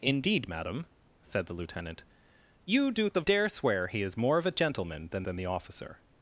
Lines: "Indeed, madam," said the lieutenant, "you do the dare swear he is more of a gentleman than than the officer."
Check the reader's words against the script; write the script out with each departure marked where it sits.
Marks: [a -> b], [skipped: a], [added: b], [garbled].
"Indeed, madam," said the lieutenant, "you do the dare swear he is more of a gentleman than than the officer."